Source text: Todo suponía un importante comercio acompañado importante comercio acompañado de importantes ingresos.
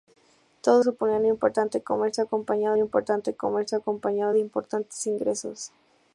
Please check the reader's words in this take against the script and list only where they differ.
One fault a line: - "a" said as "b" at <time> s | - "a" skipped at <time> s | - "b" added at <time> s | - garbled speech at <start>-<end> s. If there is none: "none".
none